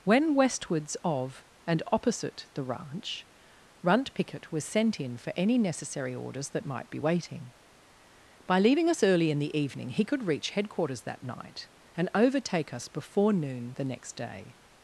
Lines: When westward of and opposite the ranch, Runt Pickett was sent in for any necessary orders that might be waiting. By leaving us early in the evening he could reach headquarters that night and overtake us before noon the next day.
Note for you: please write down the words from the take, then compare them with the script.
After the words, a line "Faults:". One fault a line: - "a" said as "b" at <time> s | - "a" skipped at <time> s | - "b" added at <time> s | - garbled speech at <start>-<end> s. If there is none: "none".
When westwards of and opposite the ranch, Runt Pickett was sent in for any necessary orders that might be waiting. By leaving us early in the evening he could reach headquarters that night and overtake us before noon the next day.
Faults:
- "westward" said as "westwards" at 0.3 s